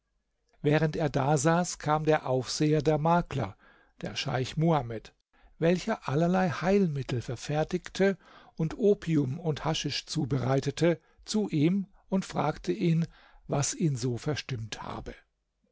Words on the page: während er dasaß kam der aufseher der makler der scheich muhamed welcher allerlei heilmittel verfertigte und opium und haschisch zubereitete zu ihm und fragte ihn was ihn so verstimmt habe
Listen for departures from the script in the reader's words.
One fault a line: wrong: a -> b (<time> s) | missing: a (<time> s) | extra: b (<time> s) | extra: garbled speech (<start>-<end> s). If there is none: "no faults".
no faults